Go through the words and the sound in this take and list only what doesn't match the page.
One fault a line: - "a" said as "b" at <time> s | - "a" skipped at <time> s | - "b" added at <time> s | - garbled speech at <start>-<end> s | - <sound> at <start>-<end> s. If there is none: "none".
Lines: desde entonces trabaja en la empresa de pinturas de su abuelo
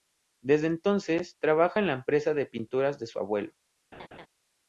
- laugh at 3.9-4.3 s